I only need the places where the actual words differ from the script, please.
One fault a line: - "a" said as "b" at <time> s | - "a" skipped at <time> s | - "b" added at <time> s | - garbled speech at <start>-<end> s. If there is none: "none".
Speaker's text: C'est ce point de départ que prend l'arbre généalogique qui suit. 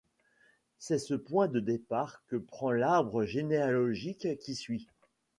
none